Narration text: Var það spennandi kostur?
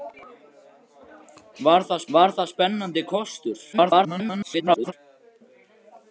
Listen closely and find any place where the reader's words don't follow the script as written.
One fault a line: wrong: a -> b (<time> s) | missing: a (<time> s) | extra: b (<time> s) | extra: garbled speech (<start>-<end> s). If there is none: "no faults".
extra: var það (2.2 s)
extra: garbled speech (3.7-4.9 s)